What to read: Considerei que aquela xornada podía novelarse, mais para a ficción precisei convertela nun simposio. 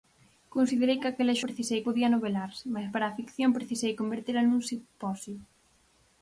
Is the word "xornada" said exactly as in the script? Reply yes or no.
no